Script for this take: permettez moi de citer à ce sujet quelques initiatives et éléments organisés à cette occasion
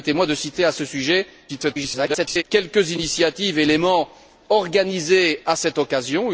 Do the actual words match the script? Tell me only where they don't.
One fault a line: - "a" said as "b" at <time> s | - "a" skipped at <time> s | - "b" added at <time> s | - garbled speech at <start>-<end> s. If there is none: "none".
- garbled speech at 1.5-2.4 s